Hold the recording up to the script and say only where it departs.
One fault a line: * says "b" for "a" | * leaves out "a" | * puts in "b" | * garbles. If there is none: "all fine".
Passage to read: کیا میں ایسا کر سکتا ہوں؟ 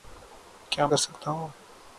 * leaves out "میں ایسا"